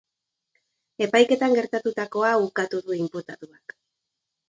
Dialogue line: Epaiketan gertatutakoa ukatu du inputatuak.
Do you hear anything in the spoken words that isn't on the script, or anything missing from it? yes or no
no